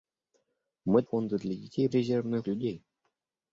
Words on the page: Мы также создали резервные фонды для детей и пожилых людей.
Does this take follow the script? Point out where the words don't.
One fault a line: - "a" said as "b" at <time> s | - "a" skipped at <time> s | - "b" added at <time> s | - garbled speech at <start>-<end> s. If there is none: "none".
- "также создали резервные" skipped at 1.0 s
- "пожилых" said as "резервные" at 1.9 s